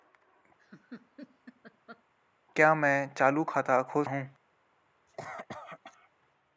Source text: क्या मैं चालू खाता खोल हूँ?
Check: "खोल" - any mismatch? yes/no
no